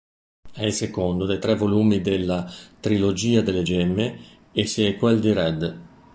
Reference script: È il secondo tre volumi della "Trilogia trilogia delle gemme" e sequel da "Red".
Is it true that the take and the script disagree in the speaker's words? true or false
true